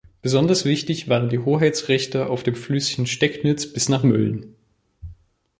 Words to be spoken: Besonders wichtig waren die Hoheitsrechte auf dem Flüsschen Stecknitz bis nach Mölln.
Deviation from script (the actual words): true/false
false